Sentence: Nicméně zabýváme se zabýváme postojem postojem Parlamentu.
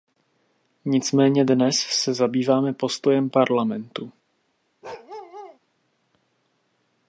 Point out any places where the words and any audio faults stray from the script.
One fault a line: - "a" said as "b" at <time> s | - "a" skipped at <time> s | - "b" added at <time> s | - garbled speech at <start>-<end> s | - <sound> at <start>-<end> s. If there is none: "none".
- "zabýváme" said as "dnes" at 1.4 s
- "postojem" skipped at 3.3 s
- bark at 4.8-5.6 s